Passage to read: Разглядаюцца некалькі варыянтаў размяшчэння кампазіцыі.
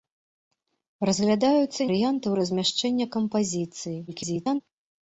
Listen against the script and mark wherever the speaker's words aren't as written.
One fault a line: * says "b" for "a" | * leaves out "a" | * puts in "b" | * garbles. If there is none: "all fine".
* leaves out "некалькі"
* garbles